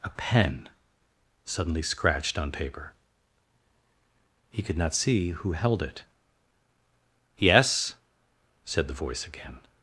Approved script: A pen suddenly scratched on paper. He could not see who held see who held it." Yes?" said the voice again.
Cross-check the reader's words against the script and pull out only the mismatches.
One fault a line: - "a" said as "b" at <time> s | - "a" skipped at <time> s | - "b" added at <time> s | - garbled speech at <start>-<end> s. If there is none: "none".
- "see who held" skipped at 5.8 s